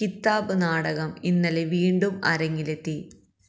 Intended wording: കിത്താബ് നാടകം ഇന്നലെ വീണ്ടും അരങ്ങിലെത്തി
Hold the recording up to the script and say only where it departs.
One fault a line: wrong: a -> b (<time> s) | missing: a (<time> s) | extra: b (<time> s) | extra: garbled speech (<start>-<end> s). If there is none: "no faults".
no faults